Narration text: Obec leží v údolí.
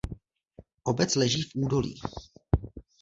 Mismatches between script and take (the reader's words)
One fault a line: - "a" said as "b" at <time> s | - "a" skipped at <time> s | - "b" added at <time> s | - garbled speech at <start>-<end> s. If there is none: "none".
none